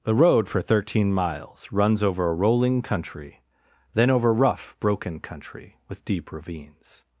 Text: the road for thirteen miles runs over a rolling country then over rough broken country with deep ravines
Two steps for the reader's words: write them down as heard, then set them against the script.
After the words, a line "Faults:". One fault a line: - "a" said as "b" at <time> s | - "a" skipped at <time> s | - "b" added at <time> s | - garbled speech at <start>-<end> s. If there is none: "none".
the road for thirteen miles runs over a rolling country then over rough broken country with deep ravines
Faults:
none